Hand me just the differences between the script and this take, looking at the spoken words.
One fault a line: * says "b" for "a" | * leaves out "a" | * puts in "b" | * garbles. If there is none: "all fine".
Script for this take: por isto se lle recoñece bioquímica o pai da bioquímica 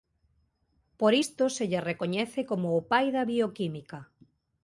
* says "como" for "bioquímica"